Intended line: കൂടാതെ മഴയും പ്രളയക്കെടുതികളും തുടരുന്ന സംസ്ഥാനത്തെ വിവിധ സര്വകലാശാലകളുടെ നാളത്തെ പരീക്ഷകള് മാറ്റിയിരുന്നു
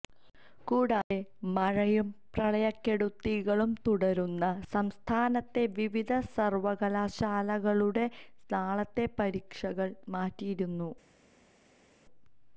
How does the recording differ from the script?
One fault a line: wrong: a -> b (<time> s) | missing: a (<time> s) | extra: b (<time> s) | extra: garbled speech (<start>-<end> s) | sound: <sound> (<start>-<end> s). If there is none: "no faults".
no faults